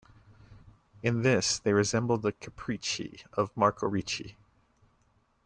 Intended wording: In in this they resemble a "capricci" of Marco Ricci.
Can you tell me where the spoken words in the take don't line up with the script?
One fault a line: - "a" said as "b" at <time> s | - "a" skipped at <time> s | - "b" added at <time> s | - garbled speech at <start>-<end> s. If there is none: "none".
- "in" skipped at 1.2 s
- "a" said as "the" at 2.2 s